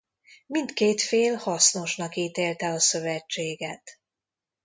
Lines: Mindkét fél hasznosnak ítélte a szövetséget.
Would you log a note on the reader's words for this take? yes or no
no